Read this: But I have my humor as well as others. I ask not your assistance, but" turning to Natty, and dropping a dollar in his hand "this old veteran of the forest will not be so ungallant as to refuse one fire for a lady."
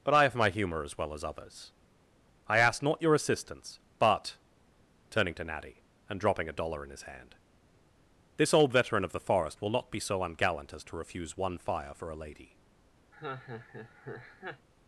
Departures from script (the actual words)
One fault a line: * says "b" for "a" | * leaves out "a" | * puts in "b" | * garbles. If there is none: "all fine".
all fine